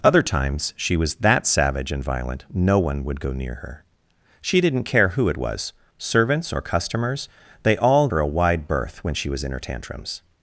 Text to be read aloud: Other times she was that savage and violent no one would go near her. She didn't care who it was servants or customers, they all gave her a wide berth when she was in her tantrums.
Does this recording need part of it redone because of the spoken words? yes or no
yes